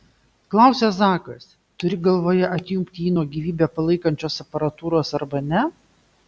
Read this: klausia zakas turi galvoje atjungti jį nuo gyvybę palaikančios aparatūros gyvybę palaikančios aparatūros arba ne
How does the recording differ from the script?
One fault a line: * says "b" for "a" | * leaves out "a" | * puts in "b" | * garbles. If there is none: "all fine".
* leaves out "gyvybę palaikančios aparatūros"